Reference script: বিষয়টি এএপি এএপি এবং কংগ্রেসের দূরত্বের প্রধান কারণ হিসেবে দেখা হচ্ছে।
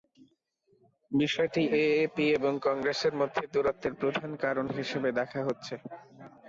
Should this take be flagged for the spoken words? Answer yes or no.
yes